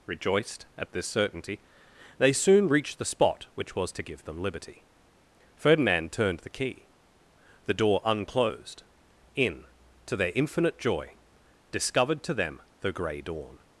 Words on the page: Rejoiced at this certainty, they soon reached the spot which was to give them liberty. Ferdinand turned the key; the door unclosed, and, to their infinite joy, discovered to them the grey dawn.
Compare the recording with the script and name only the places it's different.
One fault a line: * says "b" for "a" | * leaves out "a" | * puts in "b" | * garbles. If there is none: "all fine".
* says "in" for "and"